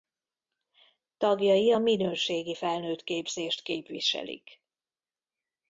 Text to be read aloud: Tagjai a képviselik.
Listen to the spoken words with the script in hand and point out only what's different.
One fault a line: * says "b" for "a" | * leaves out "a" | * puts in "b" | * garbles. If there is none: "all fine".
* puts in "minőségi felnőttképzést"